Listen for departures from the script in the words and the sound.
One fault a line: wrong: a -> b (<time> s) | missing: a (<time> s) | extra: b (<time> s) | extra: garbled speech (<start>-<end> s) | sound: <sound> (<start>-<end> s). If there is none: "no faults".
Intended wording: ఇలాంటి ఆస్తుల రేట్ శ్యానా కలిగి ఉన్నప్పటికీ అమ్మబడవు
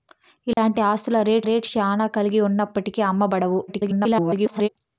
sound: dropout (0.5-0.6 s)
extra: రేట్ (1.4 s)
extra: garbled speech (3.7-4.7 s)